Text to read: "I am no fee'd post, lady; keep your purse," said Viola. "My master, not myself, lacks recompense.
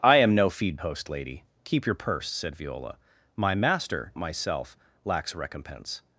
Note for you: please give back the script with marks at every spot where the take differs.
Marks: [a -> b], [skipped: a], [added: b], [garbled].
"I am no fee'd post, lady; keep your purse," said Viola. "My master, [skipped: not] myself, lacks recompense.